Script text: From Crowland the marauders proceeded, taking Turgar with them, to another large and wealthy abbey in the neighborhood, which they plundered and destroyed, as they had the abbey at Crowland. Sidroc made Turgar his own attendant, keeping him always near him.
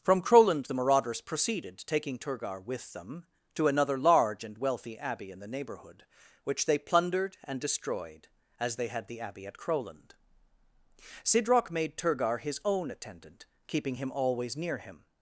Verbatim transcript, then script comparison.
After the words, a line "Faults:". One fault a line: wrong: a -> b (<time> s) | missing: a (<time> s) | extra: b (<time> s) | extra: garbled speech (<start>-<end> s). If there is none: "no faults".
From Crowland the marauders proceeded, taking Turgar with them, to another large and wealthy abbey in the neighborhood, which they plundered and destroyed, as they had the abbey at Crowland. Sidroc made Turgar his own attendant, keeping him always near him.
Faults:
no faults